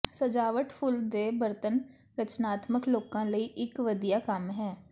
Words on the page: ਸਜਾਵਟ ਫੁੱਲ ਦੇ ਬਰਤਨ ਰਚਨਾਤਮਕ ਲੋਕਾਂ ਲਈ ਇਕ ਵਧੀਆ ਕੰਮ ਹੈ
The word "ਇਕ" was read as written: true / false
true